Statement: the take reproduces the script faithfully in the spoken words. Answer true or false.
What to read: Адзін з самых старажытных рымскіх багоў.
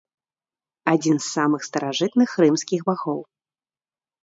true